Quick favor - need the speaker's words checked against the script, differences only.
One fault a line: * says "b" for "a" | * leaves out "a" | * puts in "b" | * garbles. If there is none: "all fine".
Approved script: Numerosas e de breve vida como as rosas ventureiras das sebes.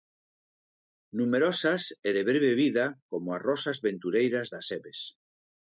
all fine